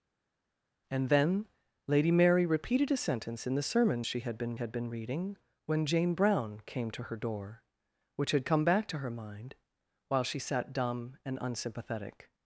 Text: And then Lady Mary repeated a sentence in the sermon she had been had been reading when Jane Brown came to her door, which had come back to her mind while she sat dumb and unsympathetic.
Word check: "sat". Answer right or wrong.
right